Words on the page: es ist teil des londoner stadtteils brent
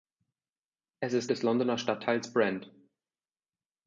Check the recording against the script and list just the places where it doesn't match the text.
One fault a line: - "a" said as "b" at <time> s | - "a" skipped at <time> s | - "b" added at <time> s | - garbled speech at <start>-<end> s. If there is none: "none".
- "teil" skipped at 1.3 s